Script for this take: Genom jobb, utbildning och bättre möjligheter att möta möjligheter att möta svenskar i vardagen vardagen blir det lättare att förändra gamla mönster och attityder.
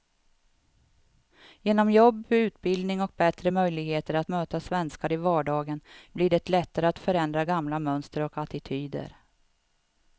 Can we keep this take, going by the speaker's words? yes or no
no